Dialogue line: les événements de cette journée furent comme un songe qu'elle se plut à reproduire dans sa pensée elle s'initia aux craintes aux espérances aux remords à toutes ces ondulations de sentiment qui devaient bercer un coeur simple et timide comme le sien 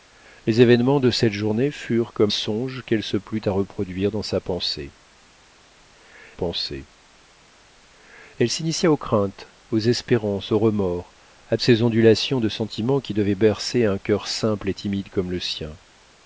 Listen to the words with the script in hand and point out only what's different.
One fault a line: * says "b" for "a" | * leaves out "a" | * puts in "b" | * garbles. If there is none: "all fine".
* leaves out "un"
* puts in "pensée"
* leaves out "toutes"